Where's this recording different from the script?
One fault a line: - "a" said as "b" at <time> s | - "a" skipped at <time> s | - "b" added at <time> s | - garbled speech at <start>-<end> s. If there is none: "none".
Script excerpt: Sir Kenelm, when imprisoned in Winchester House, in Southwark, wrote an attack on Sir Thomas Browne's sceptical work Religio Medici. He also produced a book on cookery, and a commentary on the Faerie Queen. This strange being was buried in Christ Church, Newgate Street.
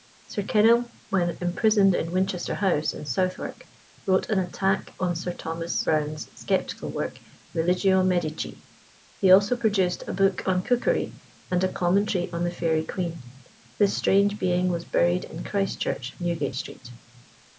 none